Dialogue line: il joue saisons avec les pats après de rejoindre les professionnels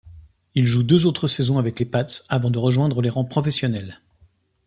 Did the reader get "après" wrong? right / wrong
wrong